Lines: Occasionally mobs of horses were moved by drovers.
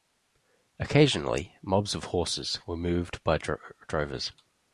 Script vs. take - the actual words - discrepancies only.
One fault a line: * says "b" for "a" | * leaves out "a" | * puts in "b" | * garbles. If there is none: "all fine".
all fine